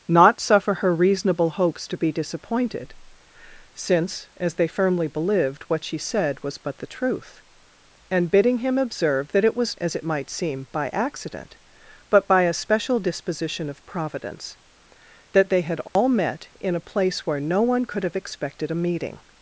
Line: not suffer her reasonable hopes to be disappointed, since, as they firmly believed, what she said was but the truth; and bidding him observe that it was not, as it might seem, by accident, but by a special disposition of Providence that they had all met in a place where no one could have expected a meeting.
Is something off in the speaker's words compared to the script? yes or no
yes